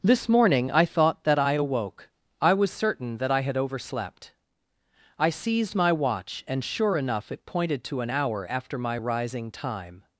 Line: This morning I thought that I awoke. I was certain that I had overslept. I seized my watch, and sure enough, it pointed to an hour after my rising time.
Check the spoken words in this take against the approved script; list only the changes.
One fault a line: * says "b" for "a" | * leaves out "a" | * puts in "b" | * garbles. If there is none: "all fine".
all fine